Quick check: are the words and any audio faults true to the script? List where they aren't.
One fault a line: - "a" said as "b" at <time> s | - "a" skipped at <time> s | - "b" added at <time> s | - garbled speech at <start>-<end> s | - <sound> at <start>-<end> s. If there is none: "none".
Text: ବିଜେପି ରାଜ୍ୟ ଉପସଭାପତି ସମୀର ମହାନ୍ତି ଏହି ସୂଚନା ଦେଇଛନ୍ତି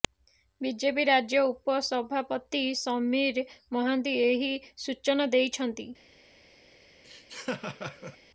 - laugh at 7.0-8.2 s